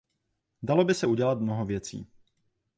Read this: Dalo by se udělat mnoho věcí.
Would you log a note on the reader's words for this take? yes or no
no